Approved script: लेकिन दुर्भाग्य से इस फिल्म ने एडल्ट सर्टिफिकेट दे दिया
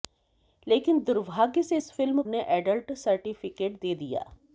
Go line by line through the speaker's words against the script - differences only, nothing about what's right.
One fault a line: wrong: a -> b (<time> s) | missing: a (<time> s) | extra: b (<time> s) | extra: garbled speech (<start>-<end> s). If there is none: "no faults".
no faults